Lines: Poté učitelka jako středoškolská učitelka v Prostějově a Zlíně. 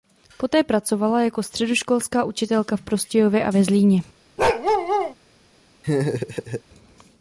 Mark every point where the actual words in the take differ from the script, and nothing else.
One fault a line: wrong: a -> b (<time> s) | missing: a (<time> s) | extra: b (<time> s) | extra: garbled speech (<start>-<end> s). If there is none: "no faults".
wrong: učitelka -> pracovala (0.6 s)
extra: ve (3.5 s)